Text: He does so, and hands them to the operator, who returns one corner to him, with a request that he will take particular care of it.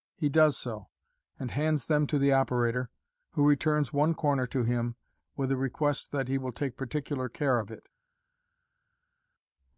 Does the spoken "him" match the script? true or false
true